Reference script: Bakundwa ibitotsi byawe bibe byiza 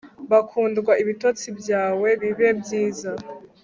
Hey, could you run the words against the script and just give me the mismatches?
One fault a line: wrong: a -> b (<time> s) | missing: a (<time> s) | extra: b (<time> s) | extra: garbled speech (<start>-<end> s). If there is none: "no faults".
no faults